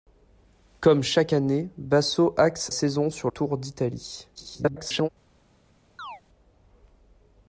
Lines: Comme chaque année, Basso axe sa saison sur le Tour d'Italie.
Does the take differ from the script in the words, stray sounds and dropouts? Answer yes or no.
yes